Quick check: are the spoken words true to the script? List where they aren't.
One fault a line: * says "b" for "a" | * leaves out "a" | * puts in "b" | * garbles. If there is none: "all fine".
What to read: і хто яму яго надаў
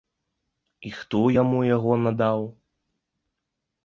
all fine